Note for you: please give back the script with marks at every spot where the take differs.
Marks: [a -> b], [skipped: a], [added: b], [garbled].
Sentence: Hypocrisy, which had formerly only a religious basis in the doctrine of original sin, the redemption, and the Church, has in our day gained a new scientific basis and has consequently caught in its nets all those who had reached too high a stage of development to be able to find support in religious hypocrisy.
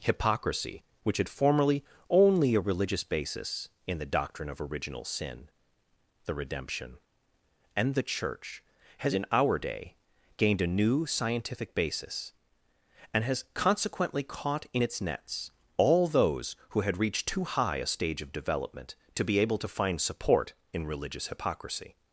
Hypocrisy, which had formerly only a religious basis in the doctrine of original sin, the redemption, and the Church, has in our day gained a new scientific basis and has consequently caught in its nets all those who had reached too high a stage of development to be able to find support in religious hypocrisy.